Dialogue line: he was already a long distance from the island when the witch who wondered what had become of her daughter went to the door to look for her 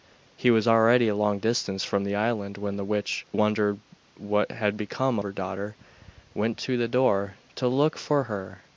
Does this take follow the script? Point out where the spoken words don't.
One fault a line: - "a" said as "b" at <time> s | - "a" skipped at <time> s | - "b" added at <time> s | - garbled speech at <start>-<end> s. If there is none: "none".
- "who" skipped at 3.2 s
- "of" skipped at 5.2 s